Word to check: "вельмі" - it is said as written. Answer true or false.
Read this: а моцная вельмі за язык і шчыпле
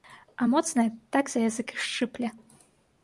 false